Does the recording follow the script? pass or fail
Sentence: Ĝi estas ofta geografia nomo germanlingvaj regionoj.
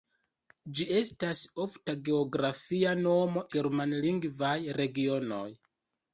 pass